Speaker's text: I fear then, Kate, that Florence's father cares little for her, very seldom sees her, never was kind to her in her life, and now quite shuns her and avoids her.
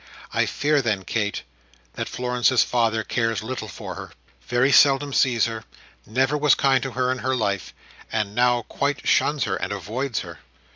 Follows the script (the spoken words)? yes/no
yes